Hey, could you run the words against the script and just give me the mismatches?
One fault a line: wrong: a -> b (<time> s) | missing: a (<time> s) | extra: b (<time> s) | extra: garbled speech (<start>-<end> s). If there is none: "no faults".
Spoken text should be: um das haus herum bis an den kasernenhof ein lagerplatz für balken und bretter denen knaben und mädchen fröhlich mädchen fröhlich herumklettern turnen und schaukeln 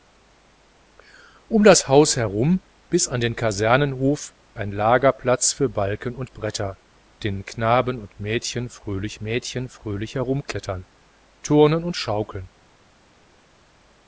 no faults